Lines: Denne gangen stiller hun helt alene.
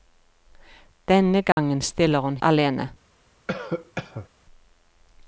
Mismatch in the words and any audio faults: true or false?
true